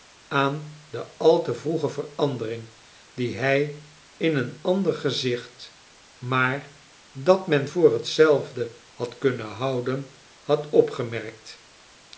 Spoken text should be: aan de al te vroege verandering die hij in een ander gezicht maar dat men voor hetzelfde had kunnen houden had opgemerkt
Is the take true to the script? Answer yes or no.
yes